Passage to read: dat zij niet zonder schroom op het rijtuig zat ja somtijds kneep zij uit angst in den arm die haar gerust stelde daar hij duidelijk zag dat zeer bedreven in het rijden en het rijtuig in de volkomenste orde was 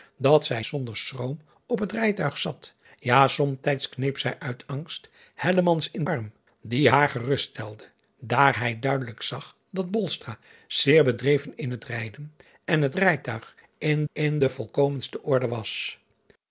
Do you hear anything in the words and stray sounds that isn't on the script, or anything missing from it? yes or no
yes